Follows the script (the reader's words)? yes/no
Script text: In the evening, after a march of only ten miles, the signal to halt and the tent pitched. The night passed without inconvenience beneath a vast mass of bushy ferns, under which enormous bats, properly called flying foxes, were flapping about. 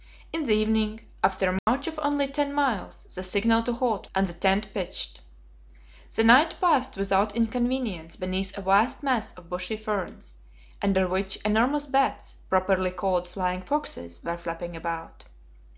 yes